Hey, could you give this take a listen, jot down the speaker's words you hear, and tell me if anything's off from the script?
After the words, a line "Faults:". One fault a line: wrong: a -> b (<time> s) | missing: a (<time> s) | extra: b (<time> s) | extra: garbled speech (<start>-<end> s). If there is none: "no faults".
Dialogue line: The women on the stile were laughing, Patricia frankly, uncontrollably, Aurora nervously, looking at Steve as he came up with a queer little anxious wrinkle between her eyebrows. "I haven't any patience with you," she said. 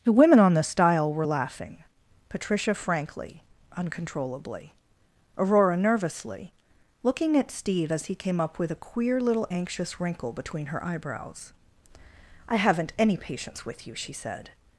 The women on the stile were laughing, Patricia frankly, uncontrollably, Aurora nervously, looking at Steve as he came up with a queer little anxious wrinkle between her eyebrows. "I haven't any patience with you," she said.
Faults:
no faults